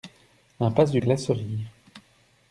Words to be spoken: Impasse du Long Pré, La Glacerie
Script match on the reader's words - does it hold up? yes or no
no